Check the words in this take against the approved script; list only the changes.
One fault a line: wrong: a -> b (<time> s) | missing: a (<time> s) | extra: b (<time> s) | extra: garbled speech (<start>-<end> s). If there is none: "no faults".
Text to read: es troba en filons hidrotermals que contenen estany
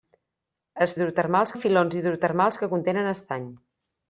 wrong: troba -> hidrotermals (1.0 s)